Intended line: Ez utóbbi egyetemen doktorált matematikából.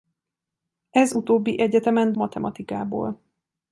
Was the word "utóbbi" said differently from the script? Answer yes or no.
no